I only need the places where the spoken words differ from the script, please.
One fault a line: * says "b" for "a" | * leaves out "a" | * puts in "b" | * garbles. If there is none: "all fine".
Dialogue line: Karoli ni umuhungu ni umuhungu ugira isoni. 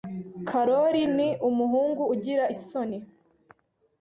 * leaves out "ni umuhungu"